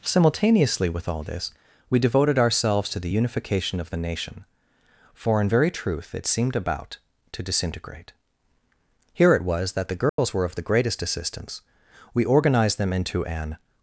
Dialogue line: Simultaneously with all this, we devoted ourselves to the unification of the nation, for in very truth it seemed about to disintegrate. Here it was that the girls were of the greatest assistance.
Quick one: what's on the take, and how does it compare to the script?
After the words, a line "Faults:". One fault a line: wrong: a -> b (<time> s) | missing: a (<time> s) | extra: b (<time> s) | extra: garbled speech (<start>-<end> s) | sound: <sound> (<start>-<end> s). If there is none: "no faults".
Simultaneously with all this, we devoted ourselves to the unification of the nation, for in very truth it seemed about to disintegrate. Here it was that the girls were of the greatest assistance. We organized them into an
Faults:
sound: dropout (10.1-10.2 s)
extra: We organized them into an (12.1 s)